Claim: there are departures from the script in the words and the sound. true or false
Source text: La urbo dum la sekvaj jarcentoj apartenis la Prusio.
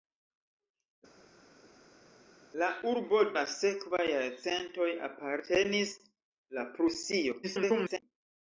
true